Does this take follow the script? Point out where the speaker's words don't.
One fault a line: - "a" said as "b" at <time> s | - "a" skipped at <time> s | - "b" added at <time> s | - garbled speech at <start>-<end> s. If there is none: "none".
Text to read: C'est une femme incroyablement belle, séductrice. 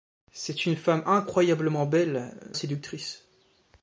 none